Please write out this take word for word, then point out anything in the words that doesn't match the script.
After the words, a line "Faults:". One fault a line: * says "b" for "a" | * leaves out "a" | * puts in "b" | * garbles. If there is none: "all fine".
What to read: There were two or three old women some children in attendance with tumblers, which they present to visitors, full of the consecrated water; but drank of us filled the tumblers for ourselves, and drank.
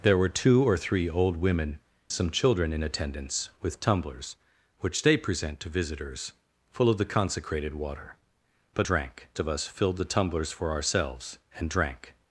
There were two or three old women some children in attendance with tumblers, which they present to visitors, full of the consecrated water; but drank of us filled the tumblers for ourselves, and drank.
Faults:
all fine